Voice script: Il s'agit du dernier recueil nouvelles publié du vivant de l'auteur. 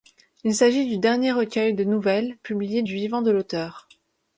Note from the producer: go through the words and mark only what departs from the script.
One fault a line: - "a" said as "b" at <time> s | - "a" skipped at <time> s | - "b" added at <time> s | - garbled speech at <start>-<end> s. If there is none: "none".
- "de" added at 1.7 s